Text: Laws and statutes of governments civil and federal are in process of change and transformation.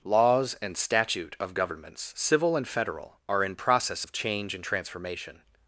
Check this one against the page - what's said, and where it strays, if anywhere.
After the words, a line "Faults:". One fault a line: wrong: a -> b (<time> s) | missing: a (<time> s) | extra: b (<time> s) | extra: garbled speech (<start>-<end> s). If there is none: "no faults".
Laws and statute of governments civil and federal are in process of change and transformation.
Faults:
wrong: statutes -> statute (0.8 s)